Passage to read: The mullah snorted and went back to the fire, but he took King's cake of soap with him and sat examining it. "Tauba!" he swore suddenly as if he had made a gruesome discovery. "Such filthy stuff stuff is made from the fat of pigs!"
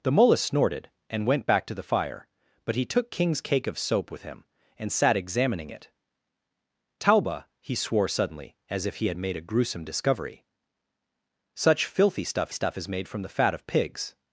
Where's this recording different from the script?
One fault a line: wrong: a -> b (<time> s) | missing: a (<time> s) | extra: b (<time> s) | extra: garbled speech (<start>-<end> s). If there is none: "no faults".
no faults